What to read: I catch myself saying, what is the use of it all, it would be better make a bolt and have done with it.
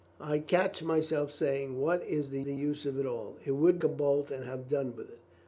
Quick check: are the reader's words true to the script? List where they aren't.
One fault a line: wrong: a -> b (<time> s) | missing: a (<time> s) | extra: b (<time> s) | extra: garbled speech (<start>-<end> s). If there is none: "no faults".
extra: the (2.4 s)
missing: be better make (3.8 s)